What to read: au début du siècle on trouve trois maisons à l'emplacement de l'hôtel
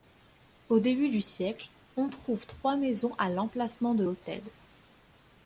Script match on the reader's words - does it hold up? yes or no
yes